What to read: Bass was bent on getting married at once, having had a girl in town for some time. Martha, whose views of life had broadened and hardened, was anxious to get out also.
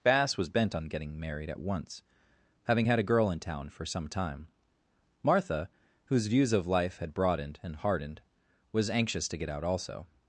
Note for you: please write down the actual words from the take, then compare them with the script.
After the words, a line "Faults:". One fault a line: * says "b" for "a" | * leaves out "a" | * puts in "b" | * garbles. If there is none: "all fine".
Bass was bent on getting married at once, having had a girl in town for some time. Martha, whose views of life had broadened and hardened, was anxious to get out also.
Faults:
all fine